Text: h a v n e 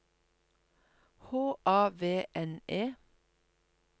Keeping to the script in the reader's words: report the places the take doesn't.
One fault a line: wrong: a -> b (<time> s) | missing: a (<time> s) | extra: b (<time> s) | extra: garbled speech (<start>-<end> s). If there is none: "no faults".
no faults